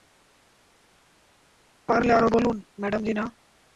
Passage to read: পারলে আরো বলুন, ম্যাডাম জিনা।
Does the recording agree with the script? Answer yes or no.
yes